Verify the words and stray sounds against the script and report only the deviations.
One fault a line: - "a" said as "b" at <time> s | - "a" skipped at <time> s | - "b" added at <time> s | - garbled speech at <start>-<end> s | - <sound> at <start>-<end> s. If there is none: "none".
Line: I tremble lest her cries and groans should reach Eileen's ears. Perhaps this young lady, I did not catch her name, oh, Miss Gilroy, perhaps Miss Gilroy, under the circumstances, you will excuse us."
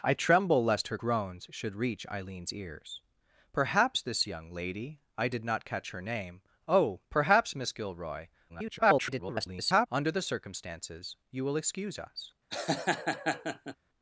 - "cries and" skipped at 1.0 s
- "Miss Gilroy" skipped at 7.0 s
- garbled speech at 8.5-9.9 s
- laugh at 12.5-13.8 s